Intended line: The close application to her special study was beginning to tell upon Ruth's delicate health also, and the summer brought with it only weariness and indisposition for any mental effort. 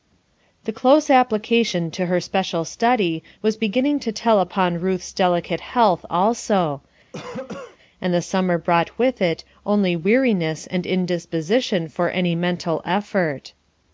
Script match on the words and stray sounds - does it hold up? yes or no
no